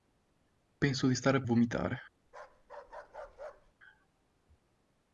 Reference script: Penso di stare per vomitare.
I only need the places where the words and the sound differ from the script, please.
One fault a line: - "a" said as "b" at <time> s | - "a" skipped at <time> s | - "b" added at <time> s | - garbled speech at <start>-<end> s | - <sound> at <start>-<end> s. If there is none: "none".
- "per" skipped at 1.4 s
- bark at 2.2-3.7 s